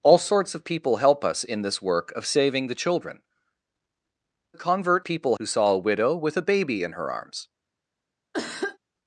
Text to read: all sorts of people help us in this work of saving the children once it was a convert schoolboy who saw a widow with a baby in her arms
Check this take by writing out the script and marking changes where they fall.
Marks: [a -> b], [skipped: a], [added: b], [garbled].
all sorts of people help us in this work of saving the children [skipped: once it was] a convert [schoolboy -> people] who saw a widow with a baby in her arms